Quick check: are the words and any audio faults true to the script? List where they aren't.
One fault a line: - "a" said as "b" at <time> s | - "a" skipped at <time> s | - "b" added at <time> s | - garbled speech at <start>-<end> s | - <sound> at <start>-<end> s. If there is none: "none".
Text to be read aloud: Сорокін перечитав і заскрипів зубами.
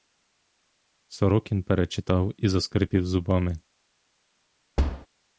- thud at 4.8-5.1 s